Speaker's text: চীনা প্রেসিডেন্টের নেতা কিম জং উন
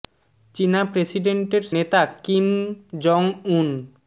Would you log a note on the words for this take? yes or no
no